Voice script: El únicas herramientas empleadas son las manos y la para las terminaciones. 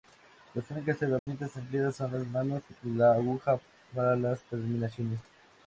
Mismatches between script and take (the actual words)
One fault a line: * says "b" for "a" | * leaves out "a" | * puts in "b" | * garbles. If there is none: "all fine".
* says "Las" for "El"
* puts in "aguja"